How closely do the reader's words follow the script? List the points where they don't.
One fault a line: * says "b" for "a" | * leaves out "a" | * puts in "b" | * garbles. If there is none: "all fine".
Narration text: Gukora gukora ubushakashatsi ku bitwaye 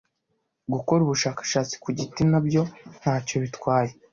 * leaves out "gukora"
* puts in "giti nabyo ntacyo"